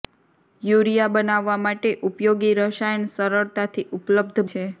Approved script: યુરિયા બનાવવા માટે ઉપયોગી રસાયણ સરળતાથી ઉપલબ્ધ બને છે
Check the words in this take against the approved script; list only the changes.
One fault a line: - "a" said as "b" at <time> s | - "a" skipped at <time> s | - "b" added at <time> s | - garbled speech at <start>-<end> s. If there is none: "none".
- "બને" skipped at 4.5 s